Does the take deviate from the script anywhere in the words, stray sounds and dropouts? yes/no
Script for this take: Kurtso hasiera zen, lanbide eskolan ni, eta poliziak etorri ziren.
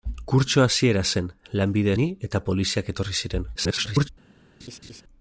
yes